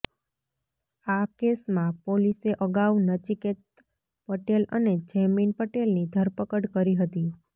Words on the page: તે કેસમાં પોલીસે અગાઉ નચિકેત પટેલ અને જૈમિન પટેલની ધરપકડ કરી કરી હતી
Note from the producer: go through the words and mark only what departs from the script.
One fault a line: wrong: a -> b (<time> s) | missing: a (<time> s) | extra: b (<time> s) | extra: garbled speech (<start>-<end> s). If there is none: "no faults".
wrong: તે -> આ (1.1 s)
missing: કરી (7.0 s)